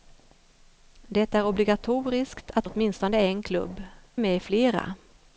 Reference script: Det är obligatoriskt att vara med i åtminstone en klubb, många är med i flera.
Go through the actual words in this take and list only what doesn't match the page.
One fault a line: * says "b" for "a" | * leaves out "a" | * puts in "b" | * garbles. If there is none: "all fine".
* leaves out "vara med i"
* leaves out "många är"